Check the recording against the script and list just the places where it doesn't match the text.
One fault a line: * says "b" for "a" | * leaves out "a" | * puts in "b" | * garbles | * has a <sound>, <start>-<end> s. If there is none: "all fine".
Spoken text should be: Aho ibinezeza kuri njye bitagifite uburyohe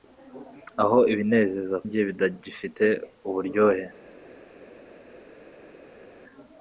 * leaves out "kuri"